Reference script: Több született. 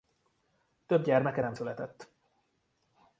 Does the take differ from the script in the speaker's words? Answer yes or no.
yes